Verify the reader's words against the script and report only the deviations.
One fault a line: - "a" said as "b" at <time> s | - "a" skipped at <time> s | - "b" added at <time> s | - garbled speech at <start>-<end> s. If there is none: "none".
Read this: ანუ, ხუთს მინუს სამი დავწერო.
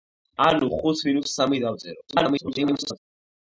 - garbled speech at 2.1-3.0 s